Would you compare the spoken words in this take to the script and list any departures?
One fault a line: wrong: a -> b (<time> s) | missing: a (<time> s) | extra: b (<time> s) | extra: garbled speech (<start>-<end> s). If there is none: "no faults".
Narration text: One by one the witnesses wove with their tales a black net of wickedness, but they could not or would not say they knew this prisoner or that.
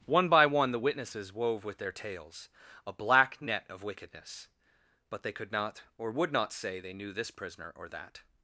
no faults